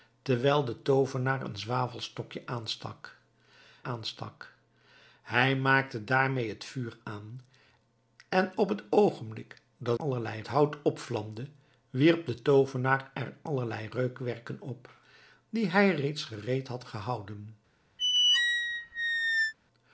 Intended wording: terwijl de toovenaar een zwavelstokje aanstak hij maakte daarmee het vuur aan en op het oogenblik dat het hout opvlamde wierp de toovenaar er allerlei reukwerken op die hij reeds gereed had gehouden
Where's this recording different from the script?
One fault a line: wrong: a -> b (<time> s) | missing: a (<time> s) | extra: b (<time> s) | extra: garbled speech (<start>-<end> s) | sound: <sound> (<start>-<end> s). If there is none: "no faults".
extra: aanstak (3.8 s)
wrong: het -> allerlei (9.9 s)
sound: squeak (18.0-19.5 s)